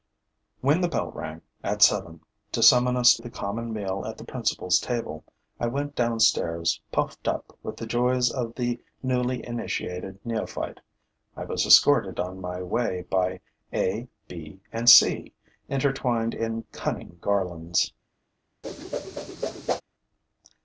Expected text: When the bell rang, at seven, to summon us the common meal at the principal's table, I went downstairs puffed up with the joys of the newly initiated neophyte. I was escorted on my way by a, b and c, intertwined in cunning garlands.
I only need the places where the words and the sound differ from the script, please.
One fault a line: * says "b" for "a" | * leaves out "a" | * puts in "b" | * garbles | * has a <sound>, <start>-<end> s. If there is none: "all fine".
* has a whoosh, 18.6-19.8 s